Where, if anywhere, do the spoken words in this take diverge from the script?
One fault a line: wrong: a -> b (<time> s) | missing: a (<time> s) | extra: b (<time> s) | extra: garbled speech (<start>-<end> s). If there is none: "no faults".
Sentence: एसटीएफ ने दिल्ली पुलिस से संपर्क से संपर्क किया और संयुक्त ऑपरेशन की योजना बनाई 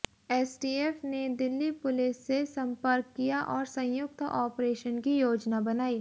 missing: से संपर्क (3.1 s)